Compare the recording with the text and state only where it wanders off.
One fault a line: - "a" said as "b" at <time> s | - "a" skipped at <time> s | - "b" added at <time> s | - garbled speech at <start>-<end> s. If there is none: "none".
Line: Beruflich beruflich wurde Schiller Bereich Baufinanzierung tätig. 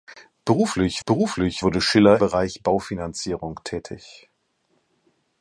none